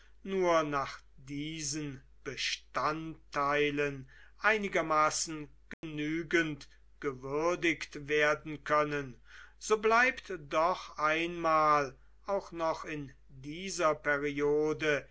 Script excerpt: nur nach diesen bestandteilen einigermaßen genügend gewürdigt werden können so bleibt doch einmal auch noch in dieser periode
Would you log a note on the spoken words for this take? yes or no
no